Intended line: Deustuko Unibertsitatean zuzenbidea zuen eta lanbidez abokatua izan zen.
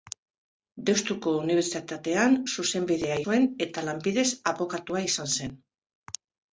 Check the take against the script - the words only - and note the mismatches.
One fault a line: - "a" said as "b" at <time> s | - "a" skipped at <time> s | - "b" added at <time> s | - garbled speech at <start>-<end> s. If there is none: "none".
none